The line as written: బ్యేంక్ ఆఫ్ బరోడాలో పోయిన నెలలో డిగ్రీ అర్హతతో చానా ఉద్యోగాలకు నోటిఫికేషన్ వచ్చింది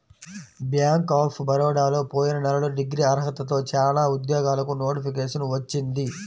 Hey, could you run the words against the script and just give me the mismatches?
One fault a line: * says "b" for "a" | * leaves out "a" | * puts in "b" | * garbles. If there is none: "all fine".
all fine